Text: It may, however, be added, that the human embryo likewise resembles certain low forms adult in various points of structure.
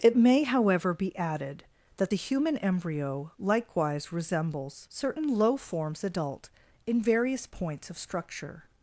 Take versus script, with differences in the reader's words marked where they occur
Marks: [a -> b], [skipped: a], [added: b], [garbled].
It may, however, be added, that the human embryo likewise resembles certain low forms adult in various points of structure.